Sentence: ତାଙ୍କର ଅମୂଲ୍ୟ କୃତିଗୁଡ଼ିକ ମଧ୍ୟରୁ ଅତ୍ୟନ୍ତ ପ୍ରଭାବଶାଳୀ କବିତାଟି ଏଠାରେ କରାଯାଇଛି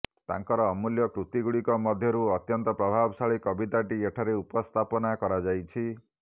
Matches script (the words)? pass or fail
fail